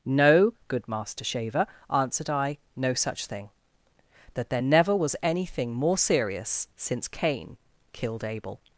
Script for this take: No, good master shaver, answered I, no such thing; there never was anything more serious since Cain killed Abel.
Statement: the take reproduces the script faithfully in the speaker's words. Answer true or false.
false